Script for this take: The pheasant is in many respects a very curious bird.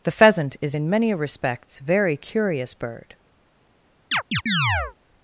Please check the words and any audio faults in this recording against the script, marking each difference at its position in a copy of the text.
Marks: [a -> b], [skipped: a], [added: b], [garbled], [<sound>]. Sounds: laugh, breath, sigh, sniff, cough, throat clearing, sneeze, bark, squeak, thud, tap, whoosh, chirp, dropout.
The pheasant is in many respects [skipped: a] very curious bird. [chirp]